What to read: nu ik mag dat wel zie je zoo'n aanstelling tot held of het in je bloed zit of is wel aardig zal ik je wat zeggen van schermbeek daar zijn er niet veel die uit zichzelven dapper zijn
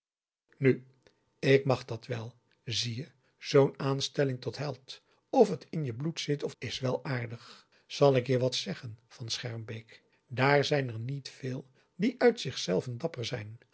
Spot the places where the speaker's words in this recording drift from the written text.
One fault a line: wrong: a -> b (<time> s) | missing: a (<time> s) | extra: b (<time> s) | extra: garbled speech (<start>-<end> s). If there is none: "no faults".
no faults